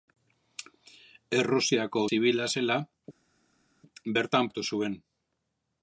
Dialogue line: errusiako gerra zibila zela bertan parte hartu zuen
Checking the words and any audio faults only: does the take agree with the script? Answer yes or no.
no